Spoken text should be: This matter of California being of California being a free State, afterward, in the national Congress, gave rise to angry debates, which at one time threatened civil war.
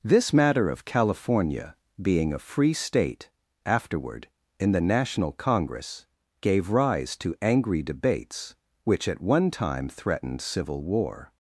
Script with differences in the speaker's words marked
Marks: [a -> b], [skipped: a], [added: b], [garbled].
This matter of California being [skipped: of California being] a free State, afterward, in the national Congress, gave rise to angry debates, which at one time threatened civil war.